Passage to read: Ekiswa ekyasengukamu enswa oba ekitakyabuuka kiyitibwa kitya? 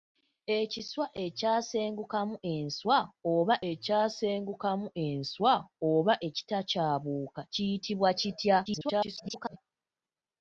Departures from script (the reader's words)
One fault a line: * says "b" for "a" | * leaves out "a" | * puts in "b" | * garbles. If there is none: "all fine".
* puts in "ekyasengukamu enswa oba"
* garbles